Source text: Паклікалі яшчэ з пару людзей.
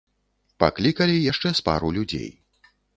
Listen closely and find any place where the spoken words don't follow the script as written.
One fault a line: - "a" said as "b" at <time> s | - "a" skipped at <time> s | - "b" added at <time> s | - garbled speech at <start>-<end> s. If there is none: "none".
none